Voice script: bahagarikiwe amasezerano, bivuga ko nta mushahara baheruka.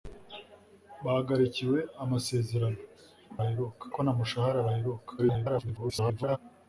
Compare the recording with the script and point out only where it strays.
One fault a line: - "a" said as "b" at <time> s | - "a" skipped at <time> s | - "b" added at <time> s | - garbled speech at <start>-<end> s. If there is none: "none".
- "bivuga" said as "baheruka" at 3.4 s
- garbled speech at 5.2-6.4 s